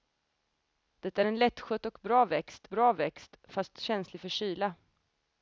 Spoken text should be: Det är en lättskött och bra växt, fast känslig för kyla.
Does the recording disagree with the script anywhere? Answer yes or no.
yes